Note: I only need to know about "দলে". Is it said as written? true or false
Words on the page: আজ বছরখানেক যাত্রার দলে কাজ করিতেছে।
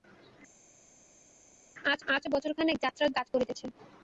false